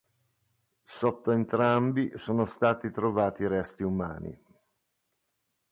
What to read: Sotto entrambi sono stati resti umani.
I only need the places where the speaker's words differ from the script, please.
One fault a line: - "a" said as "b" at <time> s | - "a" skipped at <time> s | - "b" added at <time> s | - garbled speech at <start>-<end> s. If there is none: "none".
- "trovati" added at 2.9 s